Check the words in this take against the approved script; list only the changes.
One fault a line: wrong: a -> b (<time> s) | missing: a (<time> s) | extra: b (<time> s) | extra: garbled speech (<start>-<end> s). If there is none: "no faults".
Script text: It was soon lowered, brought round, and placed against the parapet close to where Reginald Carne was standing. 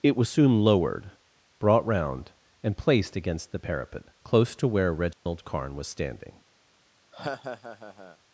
no faults